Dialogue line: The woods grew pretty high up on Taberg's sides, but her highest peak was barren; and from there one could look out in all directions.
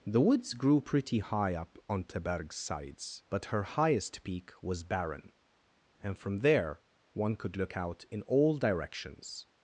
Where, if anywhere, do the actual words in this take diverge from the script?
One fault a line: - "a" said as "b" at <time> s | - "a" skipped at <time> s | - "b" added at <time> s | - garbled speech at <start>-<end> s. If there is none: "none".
none